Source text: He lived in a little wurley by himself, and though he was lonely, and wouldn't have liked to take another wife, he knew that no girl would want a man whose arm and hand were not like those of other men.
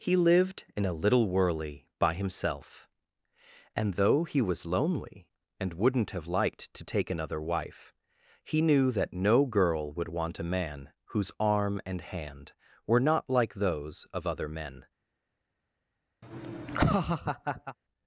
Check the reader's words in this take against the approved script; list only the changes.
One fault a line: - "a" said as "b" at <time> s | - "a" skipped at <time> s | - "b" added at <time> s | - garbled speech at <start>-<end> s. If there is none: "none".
none